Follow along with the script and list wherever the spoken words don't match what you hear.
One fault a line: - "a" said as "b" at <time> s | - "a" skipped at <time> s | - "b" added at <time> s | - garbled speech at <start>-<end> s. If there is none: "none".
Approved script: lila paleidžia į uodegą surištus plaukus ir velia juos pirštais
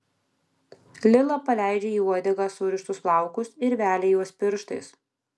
none